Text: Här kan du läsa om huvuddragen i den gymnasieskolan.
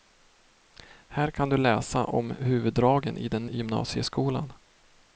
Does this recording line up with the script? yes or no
yes